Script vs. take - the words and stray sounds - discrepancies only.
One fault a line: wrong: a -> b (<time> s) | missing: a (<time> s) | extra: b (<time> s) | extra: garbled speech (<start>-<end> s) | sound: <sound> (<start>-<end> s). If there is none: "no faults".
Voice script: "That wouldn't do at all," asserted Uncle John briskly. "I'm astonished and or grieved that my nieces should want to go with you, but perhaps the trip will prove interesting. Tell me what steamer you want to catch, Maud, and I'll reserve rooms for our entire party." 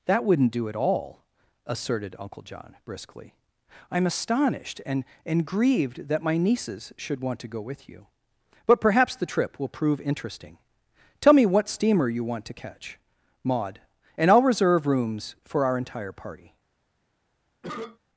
wrong: or -> and (5.2 s)
sound: cough (17.6-18.0 s)